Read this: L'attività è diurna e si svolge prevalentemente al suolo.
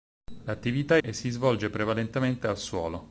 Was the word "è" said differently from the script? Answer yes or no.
yes